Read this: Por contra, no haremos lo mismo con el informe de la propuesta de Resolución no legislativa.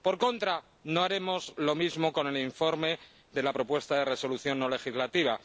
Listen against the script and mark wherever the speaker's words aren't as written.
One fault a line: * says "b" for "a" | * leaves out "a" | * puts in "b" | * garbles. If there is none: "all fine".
all fine